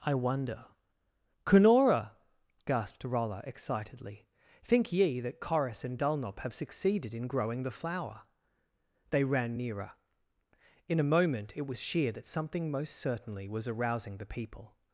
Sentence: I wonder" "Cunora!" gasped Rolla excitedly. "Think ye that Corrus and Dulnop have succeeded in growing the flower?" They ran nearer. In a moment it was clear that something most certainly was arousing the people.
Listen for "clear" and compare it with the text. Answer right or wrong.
wrong